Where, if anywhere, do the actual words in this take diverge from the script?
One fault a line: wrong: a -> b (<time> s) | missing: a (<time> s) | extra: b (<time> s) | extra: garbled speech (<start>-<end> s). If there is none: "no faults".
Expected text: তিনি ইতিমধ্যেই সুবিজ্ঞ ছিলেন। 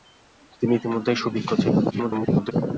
extra: garbled speech (1.9-2.5 s)